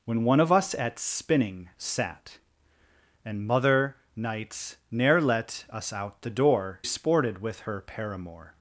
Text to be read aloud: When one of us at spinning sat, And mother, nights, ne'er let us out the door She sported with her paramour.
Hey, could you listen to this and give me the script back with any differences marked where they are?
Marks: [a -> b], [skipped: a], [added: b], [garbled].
When one of us at spinning sat, And mother, nights, ne'er let us out the door [skipped: She] sported with her paramour.